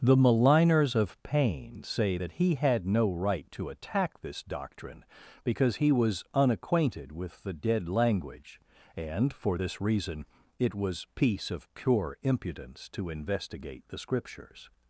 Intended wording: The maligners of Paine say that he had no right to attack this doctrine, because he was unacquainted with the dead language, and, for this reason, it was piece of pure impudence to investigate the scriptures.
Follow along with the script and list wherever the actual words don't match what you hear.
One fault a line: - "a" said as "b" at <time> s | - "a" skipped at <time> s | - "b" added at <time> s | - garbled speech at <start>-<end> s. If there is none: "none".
none